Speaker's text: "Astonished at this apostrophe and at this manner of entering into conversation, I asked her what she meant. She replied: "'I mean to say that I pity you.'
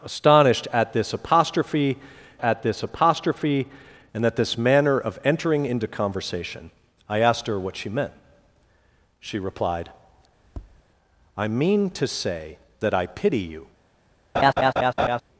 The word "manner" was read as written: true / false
true